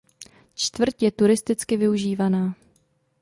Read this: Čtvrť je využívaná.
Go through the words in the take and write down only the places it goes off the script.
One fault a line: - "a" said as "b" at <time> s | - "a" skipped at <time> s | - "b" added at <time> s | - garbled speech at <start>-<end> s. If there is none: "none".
- "turisticky" added at 1.1 s